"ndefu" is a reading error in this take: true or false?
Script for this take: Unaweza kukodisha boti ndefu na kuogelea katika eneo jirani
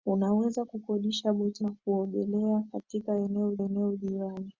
true